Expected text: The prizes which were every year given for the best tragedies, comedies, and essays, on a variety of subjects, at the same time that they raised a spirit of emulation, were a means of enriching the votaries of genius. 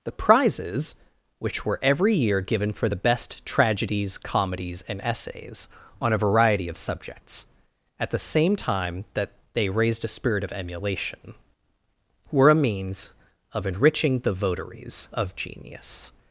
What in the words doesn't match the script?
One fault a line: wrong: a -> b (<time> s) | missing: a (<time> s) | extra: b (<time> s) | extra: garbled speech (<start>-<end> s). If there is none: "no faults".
no faults